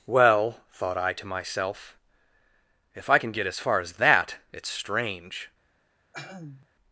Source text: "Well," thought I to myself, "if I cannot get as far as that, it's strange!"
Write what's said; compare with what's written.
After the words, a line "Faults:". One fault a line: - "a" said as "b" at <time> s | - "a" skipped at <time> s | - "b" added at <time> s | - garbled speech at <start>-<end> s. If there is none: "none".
"Well," thought I to myself, "if I can get as far as that, it's strange!"
Faults:
- "cannot" said as "can" at 3.2 s